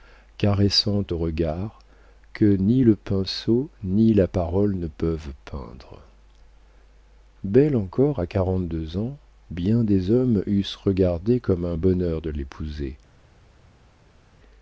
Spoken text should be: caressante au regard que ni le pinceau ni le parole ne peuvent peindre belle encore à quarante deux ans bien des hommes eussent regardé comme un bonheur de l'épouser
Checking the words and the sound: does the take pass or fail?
fail